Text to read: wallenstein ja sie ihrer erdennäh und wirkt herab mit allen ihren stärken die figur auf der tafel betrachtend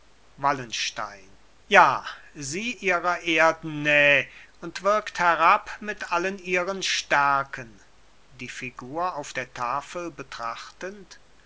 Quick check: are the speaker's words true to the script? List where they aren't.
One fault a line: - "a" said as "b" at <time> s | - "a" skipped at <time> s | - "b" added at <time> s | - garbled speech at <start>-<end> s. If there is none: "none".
none